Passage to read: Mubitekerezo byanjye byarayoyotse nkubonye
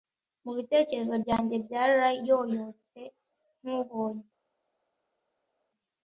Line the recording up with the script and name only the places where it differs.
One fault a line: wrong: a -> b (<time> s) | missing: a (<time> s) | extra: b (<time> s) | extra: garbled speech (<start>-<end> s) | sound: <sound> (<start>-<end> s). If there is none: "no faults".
no faults